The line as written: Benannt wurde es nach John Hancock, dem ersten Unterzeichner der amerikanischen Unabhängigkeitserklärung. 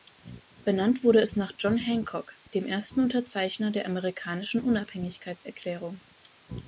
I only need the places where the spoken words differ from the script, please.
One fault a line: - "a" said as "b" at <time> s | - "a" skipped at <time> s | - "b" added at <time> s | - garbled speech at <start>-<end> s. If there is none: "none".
none